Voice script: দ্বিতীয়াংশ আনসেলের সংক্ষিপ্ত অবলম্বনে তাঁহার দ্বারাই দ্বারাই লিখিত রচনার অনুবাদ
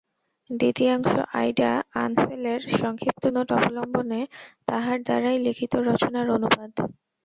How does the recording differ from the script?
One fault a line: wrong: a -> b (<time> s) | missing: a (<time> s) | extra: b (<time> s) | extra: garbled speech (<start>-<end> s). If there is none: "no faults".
extra: আইডা (1.4 s)
extra: নোট (3.3 s)
missing: দ্বারাই (5.4 s)